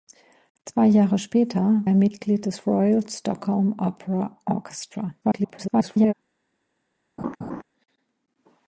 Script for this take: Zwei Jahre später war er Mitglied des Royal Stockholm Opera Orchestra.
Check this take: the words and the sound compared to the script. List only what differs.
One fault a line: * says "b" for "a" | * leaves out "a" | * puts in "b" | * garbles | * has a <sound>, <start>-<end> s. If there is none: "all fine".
* leaves out "war"
* garbles
* has a laugh, 7.2-7.6 s